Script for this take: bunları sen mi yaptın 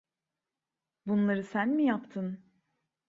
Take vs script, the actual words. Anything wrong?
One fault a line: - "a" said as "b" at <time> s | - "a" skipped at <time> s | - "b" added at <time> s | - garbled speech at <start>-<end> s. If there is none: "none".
none